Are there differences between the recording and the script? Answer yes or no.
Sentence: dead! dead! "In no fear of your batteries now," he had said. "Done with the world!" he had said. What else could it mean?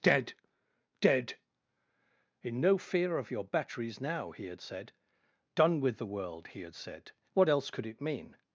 no